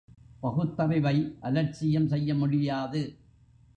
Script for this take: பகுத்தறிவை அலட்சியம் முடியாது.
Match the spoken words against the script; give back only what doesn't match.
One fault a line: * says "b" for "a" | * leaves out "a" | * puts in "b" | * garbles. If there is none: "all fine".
* puts in "செய்ய"